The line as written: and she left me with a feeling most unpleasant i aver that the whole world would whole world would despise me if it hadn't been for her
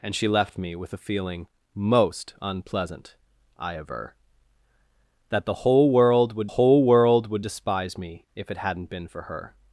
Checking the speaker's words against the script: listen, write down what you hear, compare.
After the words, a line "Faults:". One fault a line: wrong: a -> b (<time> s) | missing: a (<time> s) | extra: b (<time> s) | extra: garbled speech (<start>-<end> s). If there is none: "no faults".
and she left me with a feeling most unpleasant i aver that the whole world would whole world would despise me if it hadn't been for her
Faults:
no faults